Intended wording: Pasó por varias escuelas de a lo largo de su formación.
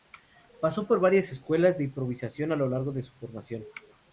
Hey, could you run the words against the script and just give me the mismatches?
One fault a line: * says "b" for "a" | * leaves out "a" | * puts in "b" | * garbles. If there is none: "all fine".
* puts in "improvisación"